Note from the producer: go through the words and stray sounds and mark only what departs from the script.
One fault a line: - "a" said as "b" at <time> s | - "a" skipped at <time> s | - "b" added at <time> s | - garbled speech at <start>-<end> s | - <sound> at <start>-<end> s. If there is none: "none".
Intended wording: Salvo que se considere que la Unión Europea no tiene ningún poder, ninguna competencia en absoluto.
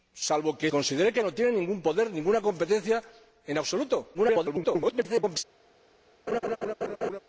- "se" skipped at 0.7 s
- "la Unión Europea" skipped at 1.2 s
- garbled speech at 4.1-5.4 s
- laugh at 6.3-7.2 s